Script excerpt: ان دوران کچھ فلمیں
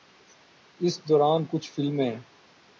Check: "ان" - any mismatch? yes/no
yes